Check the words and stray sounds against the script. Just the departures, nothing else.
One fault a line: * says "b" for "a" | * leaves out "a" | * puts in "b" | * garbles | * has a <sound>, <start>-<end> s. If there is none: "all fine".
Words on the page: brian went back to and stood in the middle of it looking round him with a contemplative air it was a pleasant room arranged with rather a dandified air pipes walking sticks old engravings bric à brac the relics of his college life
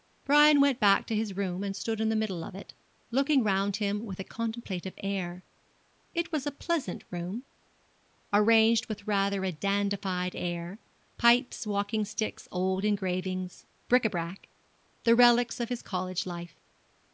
* puts in "his room"